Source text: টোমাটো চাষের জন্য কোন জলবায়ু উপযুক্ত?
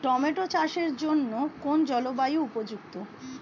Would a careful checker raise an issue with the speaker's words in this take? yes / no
no